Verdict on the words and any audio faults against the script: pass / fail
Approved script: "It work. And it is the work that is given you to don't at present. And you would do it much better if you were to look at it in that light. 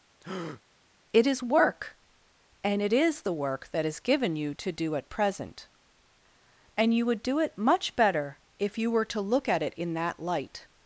fail